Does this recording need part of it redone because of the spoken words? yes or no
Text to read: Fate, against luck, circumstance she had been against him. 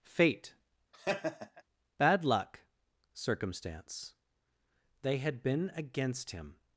yes